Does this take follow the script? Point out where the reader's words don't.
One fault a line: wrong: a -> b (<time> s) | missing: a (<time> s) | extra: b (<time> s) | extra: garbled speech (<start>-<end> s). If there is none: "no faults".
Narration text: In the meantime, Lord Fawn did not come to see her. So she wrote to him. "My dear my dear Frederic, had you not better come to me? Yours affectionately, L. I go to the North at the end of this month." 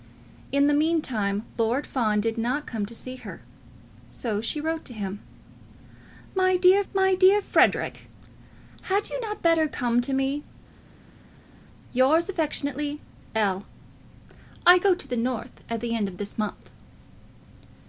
no faults